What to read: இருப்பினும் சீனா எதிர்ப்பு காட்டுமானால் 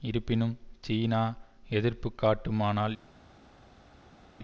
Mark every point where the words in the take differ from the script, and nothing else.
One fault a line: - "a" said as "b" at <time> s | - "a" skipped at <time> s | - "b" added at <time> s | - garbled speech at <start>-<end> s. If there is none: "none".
none